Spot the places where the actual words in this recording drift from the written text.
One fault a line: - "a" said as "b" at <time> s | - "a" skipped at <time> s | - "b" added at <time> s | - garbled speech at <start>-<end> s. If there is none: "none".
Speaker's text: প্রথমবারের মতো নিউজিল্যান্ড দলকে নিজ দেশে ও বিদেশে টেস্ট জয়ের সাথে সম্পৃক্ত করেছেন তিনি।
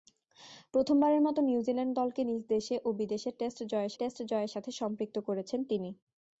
- "টেস্ট জয়ের" added at 4.0 s